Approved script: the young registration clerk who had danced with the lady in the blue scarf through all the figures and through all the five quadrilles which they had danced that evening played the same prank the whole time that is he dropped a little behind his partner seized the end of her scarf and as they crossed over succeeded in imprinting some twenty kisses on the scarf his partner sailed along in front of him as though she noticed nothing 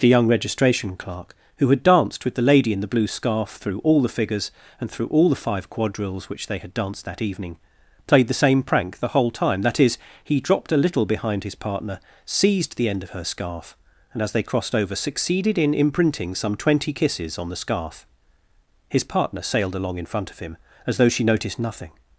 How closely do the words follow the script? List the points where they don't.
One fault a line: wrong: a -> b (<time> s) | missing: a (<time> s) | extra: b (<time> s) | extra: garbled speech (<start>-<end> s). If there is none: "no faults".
no faults